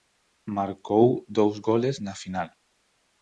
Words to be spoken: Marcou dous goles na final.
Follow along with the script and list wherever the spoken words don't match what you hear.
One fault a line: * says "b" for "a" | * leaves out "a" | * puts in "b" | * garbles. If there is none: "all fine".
all fine